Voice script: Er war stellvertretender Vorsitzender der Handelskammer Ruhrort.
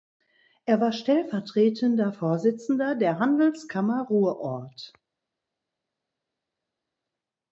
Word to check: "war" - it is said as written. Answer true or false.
true